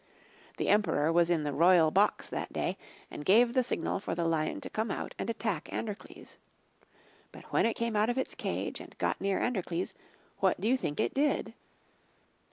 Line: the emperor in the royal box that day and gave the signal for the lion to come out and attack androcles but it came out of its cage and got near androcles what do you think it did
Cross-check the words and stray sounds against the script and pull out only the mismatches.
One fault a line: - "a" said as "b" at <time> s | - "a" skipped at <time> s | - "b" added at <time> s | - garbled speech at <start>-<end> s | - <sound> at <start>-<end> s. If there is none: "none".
- "was" added at 1.1 s
- "when" added at 7.5 s